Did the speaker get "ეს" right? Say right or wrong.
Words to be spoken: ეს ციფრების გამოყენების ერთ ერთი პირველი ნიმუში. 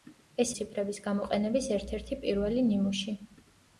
right